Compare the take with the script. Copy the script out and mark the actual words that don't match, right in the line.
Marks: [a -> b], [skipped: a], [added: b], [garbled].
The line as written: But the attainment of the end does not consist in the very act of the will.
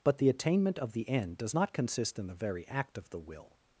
But the attainment of the end does not consist in the very act of the will.